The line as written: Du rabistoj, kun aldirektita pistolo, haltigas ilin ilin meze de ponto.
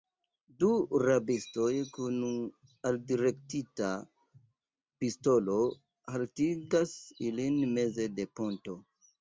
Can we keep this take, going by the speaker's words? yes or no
no